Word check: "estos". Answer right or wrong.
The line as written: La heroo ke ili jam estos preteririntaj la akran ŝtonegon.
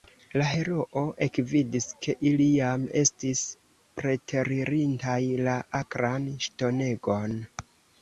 wrong